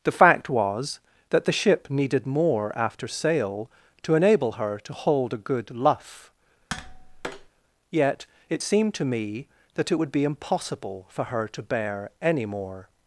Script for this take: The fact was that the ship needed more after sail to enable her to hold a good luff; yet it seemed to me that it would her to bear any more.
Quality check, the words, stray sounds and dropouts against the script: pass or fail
fail